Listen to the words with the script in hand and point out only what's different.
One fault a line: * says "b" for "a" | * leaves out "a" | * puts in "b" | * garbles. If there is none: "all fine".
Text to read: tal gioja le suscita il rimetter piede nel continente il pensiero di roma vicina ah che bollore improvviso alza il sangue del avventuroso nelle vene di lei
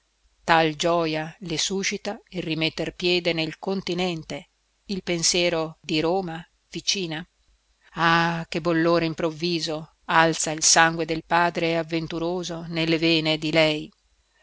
* puts in "padre"